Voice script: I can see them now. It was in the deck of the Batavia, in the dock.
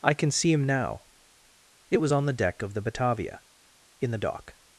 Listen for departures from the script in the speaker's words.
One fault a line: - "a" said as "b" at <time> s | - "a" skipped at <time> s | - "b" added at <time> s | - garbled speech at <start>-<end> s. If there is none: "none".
- "them" said as "him" at 0.5 s
- "in" said as "on" at 2.1 s